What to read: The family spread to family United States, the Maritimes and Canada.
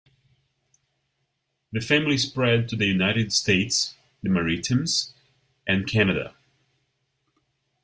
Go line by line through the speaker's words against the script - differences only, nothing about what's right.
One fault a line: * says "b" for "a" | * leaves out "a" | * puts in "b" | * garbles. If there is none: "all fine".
* says "the" for "family"